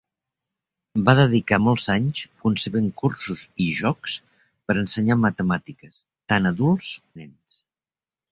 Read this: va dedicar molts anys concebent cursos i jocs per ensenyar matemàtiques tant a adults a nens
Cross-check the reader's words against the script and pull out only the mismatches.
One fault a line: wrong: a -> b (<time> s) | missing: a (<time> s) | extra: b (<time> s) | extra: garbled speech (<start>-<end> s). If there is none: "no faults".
no faults